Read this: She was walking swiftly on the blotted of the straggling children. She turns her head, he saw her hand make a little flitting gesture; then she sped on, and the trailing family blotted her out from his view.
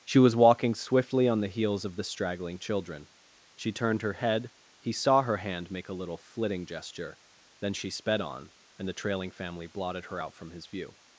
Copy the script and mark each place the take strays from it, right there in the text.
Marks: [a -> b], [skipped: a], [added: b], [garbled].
She was walking swiftly on the [blotted -> heels] of the straggling children. She [turns -> turned] her head, he saw her hand make a little flitting gesture; then she sped on, and the trailing family blotted her out from his view.